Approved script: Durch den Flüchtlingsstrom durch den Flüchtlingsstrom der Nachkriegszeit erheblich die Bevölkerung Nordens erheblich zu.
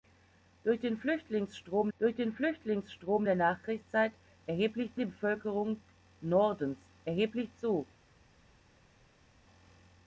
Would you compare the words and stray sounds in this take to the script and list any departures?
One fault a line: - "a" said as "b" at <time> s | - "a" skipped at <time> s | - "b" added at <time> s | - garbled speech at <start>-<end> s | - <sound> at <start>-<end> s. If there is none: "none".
none